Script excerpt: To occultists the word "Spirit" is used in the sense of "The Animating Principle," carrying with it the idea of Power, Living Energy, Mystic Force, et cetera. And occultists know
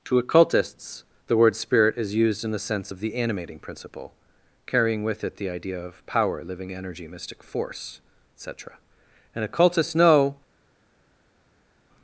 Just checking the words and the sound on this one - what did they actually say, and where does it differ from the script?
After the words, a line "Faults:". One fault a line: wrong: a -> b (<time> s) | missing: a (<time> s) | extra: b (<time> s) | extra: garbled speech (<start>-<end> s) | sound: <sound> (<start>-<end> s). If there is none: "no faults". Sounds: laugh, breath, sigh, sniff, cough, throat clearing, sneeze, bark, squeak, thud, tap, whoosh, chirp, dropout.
To occultists the word "Spirit" is used in the sense of "The Animating Principle," carrying with it the idea of Power, Living Energy, Mystic Force, et cetera. And occultists know
Faults:
no faults